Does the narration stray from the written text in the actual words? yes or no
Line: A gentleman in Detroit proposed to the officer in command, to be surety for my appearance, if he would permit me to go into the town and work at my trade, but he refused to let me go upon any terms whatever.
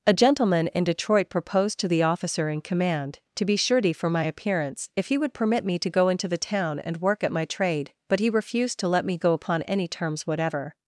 no